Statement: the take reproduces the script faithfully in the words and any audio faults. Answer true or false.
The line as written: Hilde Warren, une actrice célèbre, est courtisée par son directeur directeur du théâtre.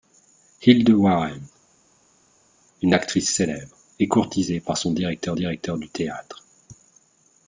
true